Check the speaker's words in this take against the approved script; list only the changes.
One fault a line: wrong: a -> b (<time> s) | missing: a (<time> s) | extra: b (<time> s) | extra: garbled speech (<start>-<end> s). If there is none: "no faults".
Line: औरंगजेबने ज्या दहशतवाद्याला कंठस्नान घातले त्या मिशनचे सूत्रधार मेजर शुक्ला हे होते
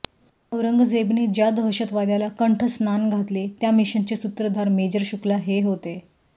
no faults